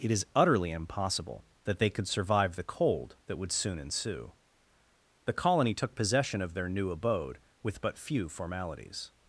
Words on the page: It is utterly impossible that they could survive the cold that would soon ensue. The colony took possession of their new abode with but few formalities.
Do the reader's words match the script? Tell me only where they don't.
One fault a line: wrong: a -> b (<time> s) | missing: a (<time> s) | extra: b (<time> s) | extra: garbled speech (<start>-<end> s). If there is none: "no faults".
no faults